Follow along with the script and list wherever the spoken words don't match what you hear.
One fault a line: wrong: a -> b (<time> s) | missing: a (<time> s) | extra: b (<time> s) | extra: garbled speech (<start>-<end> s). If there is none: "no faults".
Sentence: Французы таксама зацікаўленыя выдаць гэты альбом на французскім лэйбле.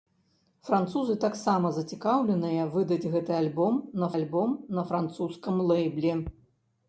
extra: альбом на (4.2 s)